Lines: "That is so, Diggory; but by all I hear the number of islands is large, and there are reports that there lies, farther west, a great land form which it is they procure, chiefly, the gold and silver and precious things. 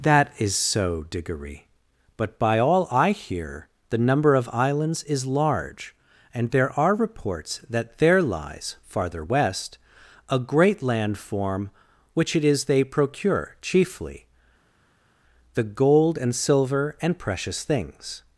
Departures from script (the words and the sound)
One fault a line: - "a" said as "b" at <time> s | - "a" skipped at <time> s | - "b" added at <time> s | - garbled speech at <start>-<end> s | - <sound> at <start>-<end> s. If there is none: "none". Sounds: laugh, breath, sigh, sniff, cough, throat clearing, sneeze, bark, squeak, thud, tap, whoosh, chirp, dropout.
none